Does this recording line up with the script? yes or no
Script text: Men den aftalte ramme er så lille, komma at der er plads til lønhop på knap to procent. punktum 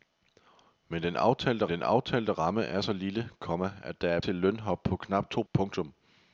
no